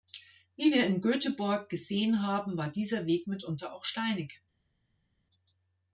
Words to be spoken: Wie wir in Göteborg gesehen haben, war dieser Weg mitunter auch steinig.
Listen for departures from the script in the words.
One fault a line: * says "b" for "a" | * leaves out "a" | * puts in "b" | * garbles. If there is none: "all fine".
all fine